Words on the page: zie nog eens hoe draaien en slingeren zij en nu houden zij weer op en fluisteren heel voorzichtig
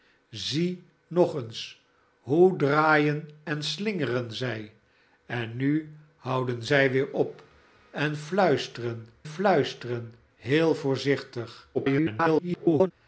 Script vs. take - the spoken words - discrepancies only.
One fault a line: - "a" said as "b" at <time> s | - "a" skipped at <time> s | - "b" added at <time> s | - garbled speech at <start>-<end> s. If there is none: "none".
- "fluisteren" added at 9.2 s
- garbled speech at 11.7-12.9 s